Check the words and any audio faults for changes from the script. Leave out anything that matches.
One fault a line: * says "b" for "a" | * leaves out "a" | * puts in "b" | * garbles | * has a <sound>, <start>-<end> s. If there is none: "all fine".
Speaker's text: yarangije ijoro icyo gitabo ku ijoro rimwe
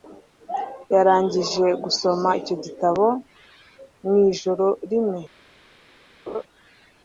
* says "gusoma" for "ijoro"
* says "mu" for "ku"
* has a laugh, 6.3-6.4 s